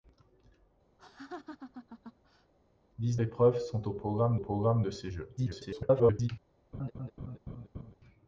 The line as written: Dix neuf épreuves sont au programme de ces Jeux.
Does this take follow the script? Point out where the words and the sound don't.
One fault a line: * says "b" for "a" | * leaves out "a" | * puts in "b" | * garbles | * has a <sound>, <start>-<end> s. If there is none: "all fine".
* has a laugh, 1.0-2.5 s
* leaves out "neuf"
* puts in "programme"
* garbles
* has a laugh, 6.7-7.9 s